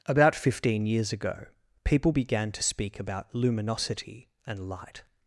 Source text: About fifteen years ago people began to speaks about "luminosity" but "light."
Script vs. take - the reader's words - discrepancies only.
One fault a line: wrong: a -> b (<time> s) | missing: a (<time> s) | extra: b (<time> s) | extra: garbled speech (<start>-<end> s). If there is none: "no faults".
wrong: speaks -> speak (2.6 s)
wrong: but -> and (4.5 s)